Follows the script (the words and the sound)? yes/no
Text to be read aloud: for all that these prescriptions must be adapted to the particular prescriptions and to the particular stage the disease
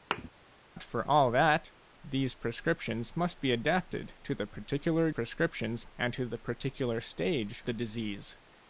no